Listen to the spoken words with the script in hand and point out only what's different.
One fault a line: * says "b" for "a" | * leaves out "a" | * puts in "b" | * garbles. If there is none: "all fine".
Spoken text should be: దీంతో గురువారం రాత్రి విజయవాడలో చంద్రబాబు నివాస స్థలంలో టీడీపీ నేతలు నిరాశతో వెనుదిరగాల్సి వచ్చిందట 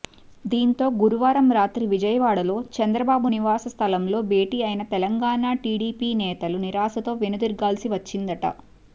* puts in "భేటీ అయిన తెలంగాణ"